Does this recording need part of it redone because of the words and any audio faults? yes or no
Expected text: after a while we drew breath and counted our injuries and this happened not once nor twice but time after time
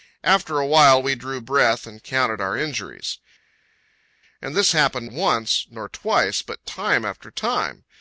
yes